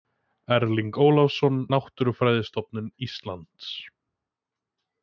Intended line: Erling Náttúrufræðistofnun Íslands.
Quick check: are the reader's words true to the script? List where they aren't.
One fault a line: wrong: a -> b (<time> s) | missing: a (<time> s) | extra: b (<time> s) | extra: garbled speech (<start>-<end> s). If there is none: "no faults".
extra: Ólafsson (1.1 s)